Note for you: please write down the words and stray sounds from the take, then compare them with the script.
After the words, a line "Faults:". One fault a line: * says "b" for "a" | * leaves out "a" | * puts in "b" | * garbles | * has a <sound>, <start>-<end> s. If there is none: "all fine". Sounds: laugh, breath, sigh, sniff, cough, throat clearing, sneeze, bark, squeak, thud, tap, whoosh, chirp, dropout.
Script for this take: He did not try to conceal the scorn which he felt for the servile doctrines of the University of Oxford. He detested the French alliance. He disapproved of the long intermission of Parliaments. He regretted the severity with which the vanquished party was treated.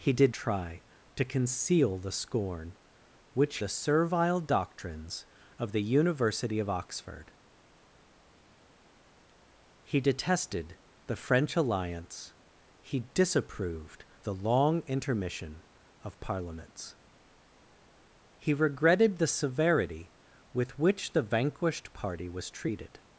He did try to conceal the scorn which the servile doctrines of the University of Oxford. He detested the French alliance. He disapproved the long intermission of Parliaments. He regretted the severity with which the vanquished party was treated.
Faults:
* leaves out "not"
* leaves out "he felt for"
* leaves out "of"